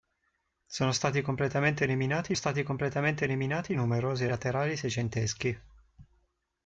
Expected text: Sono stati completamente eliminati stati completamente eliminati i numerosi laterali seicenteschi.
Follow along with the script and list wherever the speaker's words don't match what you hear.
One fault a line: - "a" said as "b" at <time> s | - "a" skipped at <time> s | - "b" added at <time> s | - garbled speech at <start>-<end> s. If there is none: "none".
none